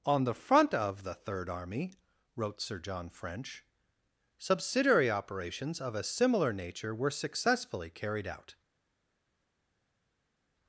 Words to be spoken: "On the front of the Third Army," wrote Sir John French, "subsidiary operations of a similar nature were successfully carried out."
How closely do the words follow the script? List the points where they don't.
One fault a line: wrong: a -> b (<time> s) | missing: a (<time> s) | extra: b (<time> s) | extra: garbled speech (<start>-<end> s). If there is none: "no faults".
no faults